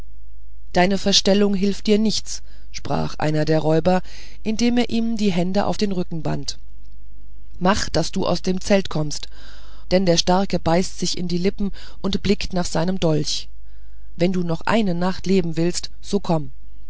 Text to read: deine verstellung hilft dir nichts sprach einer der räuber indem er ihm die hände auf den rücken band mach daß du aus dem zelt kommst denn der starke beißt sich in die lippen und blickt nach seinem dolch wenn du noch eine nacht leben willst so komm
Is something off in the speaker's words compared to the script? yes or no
no